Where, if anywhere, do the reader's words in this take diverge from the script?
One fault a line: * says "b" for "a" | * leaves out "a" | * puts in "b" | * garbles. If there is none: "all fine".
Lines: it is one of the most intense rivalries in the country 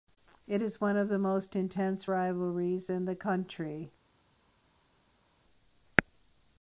all fine